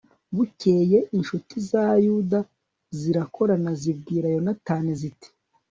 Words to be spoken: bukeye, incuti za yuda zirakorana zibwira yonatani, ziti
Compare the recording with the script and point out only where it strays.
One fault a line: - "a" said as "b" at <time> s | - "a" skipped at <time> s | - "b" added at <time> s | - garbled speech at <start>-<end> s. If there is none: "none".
none